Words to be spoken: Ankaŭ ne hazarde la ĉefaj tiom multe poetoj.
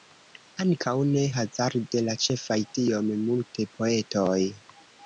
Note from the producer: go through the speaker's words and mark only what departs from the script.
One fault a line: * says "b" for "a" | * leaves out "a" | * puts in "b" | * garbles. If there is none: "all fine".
all fine